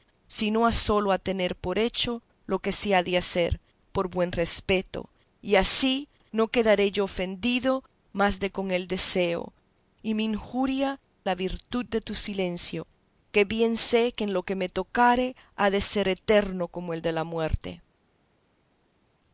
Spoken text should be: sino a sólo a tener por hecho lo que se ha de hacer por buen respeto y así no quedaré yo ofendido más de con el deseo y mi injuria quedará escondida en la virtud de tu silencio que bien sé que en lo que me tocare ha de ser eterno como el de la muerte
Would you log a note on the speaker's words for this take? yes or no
yes